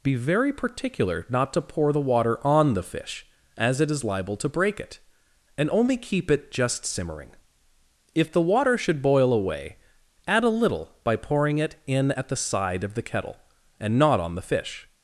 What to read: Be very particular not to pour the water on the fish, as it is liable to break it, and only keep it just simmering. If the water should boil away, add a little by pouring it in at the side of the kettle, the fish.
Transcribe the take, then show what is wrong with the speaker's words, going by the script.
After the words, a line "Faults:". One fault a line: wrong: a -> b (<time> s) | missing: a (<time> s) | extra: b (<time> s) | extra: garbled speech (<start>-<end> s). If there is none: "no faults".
Be very particular not to pour the water on the fish, as it is liable to break it, and only keep it just simmering. If the water should boil away, add a little by pouring it in at the side of the kettle, and not on the fish.
Faults:
extra: and not on (13.8 s)